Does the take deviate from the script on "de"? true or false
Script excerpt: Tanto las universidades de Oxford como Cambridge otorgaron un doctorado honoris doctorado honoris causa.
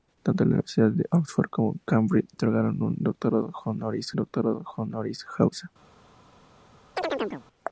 false